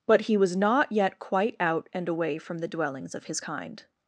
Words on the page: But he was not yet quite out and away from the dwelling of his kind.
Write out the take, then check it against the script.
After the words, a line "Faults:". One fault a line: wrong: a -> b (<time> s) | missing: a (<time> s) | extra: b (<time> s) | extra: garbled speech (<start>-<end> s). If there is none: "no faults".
But he was not yet quite out and away from the dwellings of his kind.
Faults:
wrong: dwelling -> dwellings (2.7 s)